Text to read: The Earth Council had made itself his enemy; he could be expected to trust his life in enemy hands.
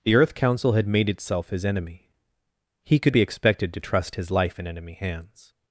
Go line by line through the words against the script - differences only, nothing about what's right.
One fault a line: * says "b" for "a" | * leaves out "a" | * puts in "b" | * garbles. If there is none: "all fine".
all fine